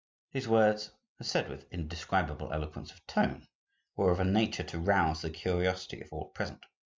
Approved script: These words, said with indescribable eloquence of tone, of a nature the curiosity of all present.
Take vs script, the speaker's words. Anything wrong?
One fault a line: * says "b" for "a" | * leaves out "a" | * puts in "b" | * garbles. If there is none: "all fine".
* puts in "were"
* puts in "to rouse"